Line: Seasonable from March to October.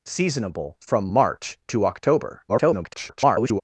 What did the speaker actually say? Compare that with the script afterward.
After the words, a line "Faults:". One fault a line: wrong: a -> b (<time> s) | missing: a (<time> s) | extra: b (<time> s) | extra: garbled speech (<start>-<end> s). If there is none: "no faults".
Seasonable from March to October. [garbled]
Faults:
extra: garbled speech (2.5-3.6 s)